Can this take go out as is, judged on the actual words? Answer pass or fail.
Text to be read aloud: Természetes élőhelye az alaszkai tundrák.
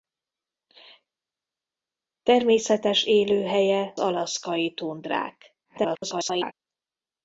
fail